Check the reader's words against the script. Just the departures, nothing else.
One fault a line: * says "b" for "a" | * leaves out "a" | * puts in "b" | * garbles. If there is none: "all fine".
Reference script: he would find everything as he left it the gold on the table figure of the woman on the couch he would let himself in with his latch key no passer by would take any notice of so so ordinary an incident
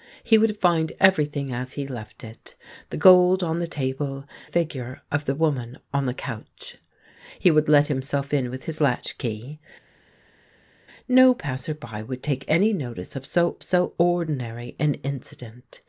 all fine